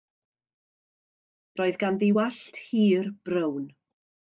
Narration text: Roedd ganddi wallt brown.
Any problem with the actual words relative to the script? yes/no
yes